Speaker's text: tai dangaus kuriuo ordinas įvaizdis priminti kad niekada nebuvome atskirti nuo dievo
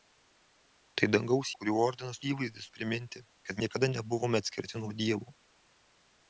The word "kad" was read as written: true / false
true